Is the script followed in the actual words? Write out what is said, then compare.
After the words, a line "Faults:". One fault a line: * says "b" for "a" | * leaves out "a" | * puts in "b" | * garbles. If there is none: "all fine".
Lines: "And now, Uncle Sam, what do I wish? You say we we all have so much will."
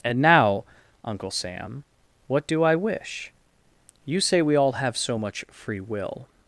"And now, Uncle Sam, what do I wish? You say we all have so much free will."
Faults:
* leaves out "we"
* puts in "free"